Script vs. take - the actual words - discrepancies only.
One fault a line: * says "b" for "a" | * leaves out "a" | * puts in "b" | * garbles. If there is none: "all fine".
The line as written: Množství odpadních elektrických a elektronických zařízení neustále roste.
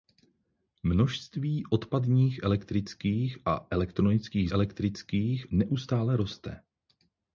* says "elektrických" for "zařízení"